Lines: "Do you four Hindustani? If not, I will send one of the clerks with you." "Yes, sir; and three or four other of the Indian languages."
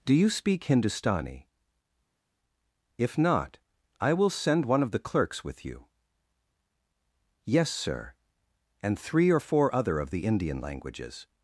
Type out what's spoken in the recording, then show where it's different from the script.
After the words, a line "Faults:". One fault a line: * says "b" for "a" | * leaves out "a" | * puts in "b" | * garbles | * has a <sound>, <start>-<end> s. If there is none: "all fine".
"Do you speak Hindustani? If not, I will send one of the clerks with you." "Yes, sir; and three or four other of the Indian languages."
Faults:
* says "speak" for "four"